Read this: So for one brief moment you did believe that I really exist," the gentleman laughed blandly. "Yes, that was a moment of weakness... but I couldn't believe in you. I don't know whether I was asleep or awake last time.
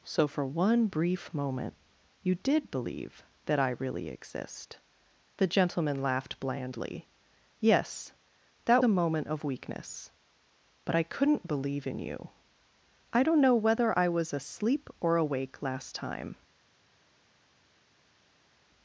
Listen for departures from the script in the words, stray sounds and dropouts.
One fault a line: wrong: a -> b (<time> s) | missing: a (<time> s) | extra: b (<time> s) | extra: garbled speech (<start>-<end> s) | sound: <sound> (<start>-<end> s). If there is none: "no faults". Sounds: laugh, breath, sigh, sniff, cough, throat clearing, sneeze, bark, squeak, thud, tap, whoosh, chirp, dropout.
missing: was (8.8 s)